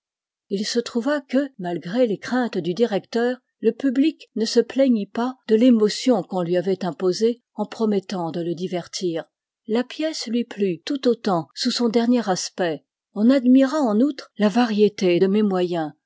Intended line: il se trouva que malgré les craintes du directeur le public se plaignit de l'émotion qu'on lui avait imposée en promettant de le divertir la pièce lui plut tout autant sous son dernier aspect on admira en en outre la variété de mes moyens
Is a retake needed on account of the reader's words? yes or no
yes